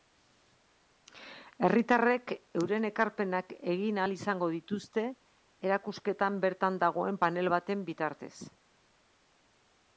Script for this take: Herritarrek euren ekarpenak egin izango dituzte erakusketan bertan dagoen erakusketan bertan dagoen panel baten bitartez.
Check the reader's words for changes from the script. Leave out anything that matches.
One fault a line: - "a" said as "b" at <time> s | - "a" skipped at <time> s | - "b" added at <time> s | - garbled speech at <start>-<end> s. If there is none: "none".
- "ahal" added at 4.0 s
- "erakusketan bertan dagoen" skipped at 7.2 s